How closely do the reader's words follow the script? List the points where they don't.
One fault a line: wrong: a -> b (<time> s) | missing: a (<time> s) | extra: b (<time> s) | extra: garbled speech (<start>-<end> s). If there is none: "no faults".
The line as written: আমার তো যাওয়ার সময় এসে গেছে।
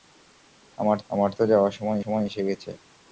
extra: আমার (1.1 s)
extra: সময় (2.0 s)